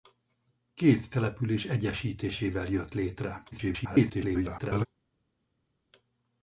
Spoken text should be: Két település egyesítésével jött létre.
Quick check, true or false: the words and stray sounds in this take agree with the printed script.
false